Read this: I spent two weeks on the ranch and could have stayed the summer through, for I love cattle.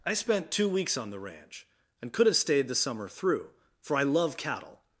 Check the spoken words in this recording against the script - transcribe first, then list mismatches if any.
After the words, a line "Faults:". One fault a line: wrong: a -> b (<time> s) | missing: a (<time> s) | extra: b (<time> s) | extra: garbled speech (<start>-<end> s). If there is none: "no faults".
I spent two weeks on the ranch and could have stayed the summer through, for I love cattle.
Faults:
no faults